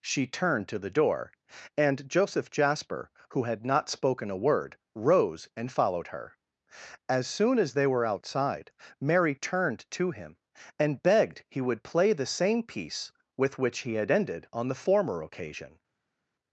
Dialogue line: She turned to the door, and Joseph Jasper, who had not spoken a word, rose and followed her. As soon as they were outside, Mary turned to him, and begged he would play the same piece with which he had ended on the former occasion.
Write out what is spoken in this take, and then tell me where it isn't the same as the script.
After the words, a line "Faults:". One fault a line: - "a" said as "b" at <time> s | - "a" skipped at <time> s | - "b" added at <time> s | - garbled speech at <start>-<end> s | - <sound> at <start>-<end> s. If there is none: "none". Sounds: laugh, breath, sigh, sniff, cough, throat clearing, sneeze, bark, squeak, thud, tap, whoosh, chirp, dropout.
She turned to the door, and Joseph Jasper, who had not spoken a word, rose and followed her. As soon as they were outside, Mary turned to him, and begged he would play the same piece with which he had ended on the former occasion.
Faults:
none